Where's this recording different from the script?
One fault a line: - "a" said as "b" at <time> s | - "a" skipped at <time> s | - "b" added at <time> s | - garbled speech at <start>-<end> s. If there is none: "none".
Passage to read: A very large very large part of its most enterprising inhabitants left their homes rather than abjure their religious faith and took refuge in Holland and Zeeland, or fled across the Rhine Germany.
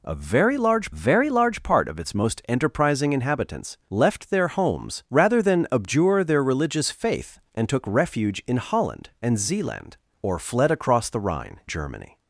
none